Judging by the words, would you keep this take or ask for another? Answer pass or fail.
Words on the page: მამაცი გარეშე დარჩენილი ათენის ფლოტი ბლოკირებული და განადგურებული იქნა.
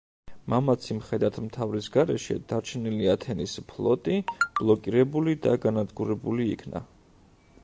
fail